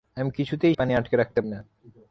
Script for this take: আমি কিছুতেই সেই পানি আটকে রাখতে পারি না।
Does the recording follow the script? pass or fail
fail